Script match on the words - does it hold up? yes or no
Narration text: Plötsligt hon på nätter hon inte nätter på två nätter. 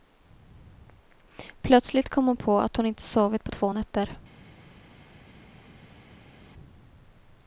no